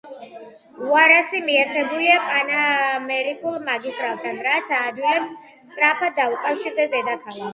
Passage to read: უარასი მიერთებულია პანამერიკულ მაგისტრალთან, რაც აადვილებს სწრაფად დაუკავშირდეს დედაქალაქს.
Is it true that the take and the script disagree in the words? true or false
false